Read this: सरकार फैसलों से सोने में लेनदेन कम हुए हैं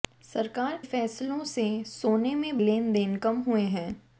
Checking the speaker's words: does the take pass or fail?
pass